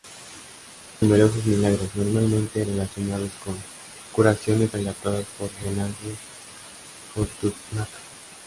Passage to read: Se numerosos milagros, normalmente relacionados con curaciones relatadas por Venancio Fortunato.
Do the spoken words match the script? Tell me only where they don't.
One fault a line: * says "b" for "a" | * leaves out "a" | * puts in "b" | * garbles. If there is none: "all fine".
all fine